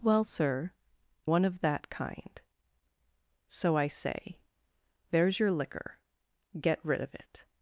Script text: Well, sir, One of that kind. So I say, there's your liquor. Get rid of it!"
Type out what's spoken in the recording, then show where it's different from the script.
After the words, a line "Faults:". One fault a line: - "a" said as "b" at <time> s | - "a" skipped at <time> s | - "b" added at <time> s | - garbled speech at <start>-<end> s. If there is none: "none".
Well, sir, One of that kind. So I say, there's your liquor. Get rid of it!"
Faults:
none